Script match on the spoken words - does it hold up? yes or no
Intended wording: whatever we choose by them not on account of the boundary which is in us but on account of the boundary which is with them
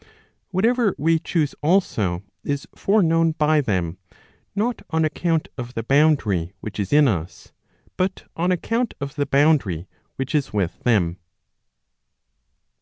no